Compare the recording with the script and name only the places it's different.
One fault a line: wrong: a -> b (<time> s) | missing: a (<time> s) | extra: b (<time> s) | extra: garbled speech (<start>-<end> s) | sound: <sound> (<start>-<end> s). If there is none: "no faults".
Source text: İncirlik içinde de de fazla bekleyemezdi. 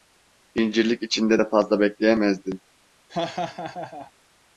missing: de (1.5 s)
sound: laugh (3.1-4.1 s)